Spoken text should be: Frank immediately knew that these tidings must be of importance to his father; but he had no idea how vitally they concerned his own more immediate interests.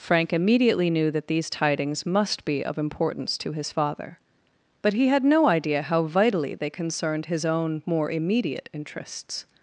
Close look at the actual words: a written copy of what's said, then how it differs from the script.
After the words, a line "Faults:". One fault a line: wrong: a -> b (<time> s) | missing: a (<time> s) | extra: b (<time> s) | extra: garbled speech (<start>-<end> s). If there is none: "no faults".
Frank immediately knew that these tidings must be of importance to his father; but he had no idea how vitally they concerned his own more immediate interests.
Faults:
no faults